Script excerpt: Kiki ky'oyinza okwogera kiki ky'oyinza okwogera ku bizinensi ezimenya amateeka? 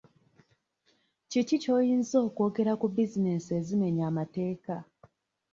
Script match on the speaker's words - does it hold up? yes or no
no